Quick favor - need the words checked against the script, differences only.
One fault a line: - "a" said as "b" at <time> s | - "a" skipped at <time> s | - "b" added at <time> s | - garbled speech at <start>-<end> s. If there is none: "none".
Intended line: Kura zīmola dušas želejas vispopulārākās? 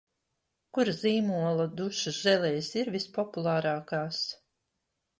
- "ir" added at 2.8 s